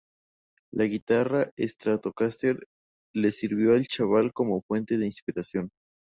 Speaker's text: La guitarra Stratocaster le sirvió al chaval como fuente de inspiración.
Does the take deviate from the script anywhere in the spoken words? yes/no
no